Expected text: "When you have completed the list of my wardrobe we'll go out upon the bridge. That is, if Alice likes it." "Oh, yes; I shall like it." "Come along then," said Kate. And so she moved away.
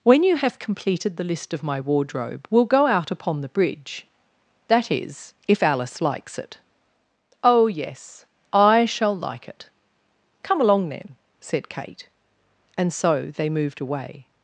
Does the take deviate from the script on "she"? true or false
true